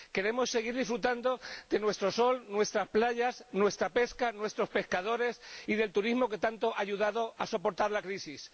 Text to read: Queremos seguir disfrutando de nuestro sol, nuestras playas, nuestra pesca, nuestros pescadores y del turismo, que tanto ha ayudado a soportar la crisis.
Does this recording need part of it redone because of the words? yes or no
no